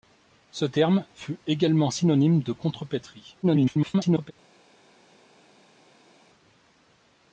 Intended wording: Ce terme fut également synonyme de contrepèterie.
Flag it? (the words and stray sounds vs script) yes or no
yes